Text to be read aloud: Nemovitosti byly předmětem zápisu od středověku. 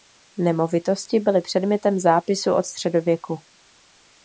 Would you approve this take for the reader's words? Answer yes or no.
yes